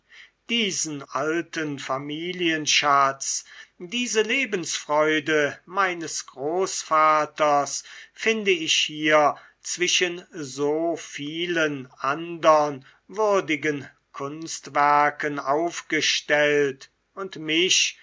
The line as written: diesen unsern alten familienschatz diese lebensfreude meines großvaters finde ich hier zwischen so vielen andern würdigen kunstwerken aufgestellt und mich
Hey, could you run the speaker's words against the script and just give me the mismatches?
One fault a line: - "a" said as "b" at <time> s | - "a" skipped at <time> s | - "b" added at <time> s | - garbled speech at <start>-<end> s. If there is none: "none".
- "unsern" skipped at 1.0 s